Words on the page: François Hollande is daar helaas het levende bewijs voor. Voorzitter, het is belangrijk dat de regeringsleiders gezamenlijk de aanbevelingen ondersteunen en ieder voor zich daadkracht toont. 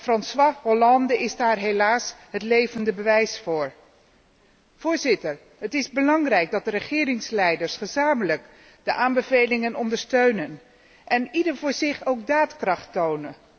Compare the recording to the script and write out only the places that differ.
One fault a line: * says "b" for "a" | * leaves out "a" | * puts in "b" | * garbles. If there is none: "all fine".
* puts in "ook"